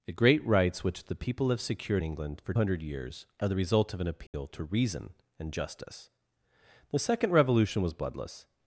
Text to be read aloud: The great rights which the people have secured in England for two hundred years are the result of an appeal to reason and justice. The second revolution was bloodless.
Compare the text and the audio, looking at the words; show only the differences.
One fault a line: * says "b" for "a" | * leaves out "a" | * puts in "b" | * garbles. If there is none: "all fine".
* leaves out "in"
* leaves out "two"